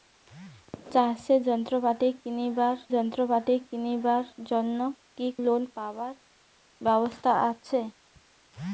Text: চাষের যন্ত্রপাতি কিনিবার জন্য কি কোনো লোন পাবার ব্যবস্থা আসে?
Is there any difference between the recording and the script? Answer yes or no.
yes